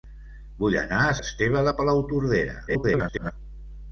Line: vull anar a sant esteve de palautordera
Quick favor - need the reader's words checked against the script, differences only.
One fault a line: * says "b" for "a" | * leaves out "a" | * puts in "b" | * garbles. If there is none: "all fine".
* leaves out "sant"
* garbles